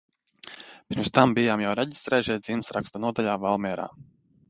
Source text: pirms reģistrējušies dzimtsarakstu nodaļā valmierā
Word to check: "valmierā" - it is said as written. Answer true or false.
true